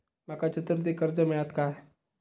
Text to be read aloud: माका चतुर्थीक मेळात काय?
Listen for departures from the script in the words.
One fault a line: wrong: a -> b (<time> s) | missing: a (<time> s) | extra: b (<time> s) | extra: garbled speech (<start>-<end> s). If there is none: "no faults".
extra: कर्ज (1.0 s)